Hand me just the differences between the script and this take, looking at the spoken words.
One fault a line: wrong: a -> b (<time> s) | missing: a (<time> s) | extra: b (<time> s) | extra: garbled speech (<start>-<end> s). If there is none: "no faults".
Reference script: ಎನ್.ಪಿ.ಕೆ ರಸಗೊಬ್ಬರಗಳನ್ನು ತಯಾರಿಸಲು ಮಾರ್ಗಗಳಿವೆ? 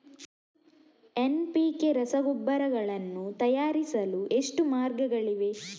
extra: ಎಷ್ಟು (4.3 s)